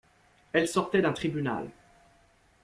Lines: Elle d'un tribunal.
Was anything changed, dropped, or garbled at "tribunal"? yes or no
no